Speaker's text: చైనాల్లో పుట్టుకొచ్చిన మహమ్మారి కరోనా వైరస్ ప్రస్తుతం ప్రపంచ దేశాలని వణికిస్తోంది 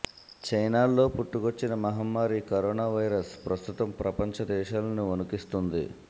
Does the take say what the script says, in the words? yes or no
yes